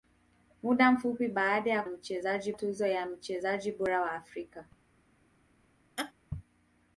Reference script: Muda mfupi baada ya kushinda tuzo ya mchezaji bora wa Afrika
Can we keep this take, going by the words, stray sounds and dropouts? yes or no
no